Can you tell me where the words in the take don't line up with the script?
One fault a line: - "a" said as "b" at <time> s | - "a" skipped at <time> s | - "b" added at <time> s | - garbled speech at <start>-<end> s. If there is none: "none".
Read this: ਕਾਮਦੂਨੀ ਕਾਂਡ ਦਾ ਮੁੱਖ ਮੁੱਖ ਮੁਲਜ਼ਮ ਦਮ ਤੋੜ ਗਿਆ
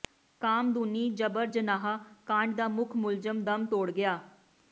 - "ਜਬਰ ਜਨਾਹ" added at 1.1 s
- "ਮੁੱਖ" skipped at 2.9 s